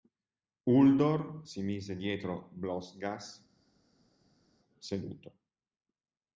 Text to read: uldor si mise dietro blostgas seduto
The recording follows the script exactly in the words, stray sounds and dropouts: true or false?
true